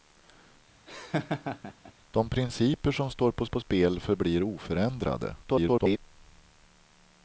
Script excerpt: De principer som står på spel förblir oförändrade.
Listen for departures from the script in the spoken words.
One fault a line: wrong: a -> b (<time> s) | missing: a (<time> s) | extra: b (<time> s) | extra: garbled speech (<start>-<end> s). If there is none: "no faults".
extra: på (3.5 s)
extra: garbled speech (5.4-6.0 s)